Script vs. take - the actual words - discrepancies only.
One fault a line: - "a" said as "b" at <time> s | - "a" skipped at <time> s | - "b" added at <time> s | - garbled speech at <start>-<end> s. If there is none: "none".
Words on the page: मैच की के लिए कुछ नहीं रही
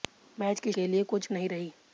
none